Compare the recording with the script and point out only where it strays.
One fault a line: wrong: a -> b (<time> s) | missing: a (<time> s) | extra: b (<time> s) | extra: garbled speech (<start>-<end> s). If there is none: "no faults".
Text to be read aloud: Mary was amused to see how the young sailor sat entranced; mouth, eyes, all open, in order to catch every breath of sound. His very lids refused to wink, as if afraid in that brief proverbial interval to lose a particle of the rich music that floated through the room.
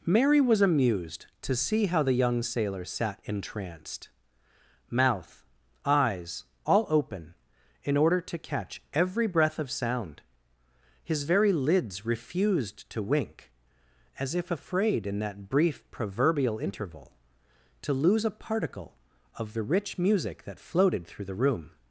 no faults